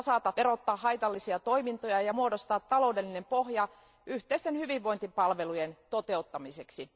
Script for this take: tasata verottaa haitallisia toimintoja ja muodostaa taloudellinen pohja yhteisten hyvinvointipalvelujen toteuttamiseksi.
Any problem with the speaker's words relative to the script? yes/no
no